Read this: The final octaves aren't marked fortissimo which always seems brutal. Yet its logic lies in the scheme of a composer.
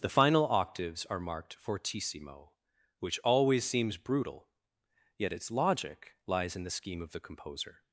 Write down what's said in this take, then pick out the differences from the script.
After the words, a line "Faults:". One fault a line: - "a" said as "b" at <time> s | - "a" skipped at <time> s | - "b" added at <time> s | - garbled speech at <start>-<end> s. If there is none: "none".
The final octaves are marked fortissimo which always seems brutal. Yet its logic lies in the scheme of the composer.
Faults:
- "aren't" said as "are" at 1.1 s
- "a" said as "the" at 7.1 s